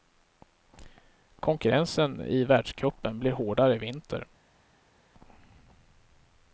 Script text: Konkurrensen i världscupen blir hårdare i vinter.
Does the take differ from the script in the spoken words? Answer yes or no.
no